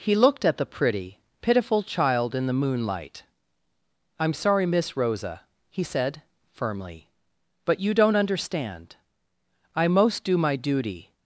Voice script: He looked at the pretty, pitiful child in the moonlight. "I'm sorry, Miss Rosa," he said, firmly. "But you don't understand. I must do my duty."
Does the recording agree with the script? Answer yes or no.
no